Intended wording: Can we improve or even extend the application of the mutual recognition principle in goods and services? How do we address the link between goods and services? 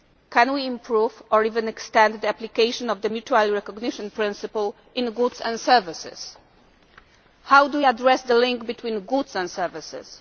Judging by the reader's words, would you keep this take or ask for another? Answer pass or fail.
pass